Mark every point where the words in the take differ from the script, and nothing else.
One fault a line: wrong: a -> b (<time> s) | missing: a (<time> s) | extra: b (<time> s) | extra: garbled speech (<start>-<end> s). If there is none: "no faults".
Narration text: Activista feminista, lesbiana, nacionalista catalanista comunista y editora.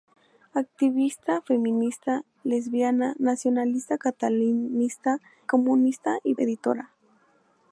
no faults